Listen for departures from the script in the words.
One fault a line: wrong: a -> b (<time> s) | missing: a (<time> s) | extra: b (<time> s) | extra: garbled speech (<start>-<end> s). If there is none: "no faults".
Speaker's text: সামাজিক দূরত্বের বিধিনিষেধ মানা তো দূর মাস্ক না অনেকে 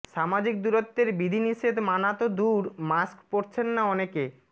extra: পরছেন (3.3 s)